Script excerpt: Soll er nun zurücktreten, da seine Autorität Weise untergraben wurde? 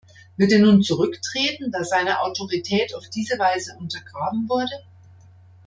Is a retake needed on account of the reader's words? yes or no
yes